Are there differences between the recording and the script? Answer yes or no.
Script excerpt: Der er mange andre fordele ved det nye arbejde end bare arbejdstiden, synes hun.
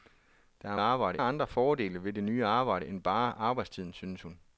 yes